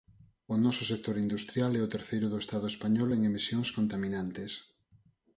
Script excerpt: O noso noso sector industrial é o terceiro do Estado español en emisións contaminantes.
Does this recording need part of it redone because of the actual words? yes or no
yes